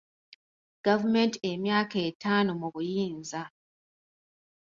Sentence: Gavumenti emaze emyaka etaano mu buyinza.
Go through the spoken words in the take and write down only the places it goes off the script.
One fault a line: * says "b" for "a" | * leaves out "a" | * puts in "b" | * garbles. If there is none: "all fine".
* leaves out "emaze"